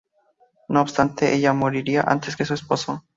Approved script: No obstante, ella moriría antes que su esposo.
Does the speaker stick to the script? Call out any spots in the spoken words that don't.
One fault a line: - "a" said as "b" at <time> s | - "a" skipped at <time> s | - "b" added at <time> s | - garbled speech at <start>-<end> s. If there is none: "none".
none